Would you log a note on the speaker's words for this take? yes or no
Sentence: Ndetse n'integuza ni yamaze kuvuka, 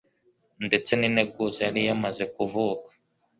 yes